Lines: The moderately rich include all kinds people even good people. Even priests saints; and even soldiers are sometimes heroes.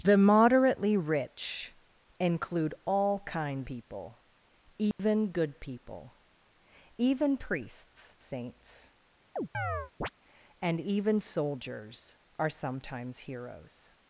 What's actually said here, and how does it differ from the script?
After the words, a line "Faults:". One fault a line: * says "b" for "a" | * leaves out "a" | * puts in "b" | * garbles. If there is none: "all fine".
The moderately rich include all kinds people even good people. Even priests saints; and even soldiers are sometimes heroes.
Faults:
all fine